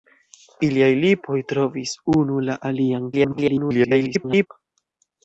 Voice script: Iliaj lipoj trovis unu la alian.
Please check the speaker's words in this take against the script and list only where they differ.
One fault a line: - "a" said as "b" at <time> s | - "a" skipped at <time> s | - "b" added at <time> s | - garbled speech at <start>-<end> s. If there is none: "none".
- garbled speech at 3.1-4.5 s